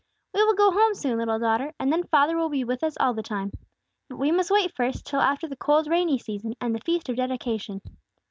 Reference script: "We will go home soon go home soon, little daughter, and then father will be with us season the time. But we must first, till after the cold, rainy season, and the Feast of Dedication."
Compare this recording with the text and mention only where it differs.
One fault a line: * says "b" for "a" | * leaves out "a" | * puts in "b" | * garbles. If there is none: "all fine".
* leaves out "go home soon"
* says "all" for "season"
* puts in "wait"